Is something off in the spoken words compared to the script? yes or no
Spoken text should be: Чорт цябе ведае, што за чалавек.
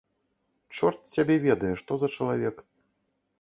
no